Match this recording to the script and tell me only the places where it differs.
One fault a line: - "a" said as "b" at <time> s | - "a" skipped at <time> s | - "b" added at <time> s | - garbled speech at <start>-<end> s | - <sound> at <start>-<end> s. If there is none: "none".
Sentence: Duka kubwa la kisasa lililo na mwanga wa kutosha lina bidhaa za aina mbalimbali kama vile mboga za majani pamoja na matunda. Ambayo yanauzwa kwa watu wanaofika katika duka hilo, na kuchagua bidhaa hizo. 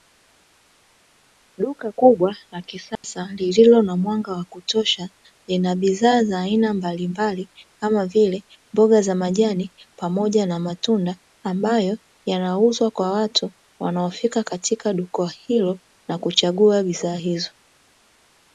- dropout at 2.9-3.0 s